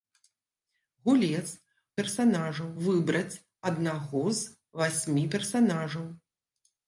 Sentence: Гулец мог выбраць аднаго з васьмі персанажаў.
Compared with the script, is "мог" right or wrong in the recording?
wrong